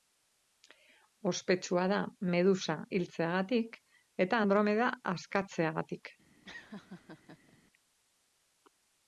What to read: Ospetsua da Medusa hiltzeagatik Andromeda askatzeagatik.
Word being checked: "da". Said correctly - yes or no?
yes